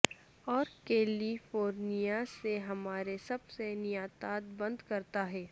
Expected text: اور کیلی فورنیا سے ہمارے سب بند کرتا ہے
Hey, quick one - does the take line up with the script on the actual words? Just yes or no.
no